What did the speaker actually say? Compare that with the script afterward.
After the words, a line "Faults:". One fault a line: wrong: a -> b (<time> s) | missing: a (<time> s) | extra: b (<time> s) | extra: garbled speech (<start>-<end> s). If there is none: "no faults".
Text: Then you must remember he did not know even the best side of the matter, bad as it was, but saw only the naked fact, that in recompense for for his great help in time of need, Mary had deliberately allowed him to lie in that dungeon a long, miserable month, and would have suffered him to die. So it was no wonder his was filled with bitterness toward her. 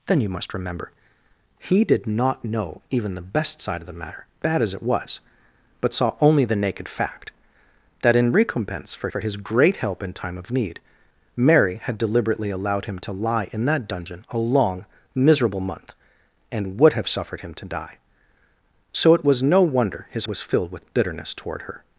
Then you must remember he did not know even the best side of the matter, bad as it was, but saw only the naked fact, that in recompense for for his great help in time of need, Mary had deliberately allowed him to lie in that dungeon a long, miserable month, and would have suffered him to die. So it was no wonder his was filled with bitterness toward her.
Faults:
no faults